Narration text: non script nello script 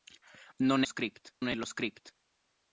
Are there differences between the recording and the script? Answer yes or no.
no